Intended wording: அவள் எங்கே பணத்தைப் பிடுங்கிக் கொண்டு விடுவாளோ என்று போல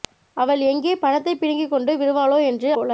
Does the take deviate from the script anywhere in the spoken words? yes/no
no